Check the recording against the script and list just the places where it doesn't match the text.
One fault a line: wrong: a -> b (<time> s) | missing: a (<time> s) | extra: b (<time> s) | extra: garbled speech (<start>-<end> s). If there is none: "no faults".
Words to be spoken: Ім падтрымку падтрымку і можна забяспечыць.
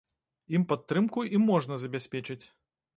missing: падтрымку (1.3 s)